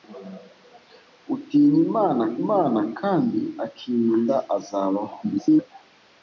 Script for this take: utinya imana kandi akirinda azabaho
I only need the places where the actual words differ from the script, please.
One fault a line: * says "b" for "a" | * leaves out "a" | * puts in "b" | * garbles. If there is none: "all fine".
* puts in "imana"
* garbles